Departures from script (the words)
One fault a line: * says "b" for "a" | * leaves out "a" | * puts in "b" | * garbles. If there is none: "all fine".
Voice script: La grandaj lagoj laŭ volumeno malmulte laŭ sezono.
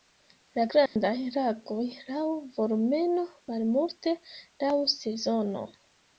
all fine